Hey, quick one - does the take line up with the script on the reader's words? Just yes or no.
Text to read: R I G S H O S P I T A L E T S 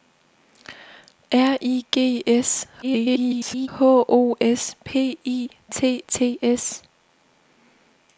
no